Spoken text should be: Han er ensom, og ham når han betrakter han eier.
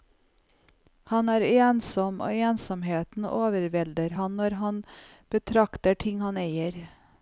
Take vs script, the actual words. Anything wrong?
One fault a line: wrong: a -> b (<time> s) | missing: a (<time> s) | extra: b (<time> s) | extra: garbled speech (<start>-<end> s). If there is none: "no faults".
extra: ensomheten overvelder (2.5 s)
extra: ting (6.1 s)